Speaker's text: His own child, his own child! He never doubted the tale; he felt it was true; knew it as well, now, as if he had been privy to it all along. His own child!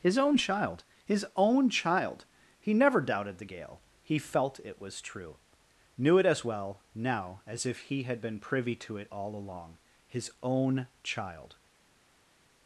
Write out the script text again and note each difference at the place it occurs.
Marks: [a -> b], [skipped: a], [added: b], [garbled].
His own child, his own child! He never doubted the [tale; -> gale] he felt it was true; knew it as well, now, as if he had been privy to it all along. His own child!